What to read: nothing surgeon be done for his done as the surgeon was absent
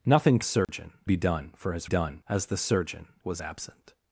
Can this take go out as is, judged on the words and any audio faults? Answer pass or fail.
fail